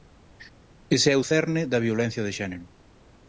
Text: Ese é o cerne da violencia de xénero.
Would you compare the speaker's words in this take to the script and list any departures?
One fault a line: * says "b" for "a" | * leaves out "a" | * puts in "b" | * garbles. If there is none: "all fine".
all fine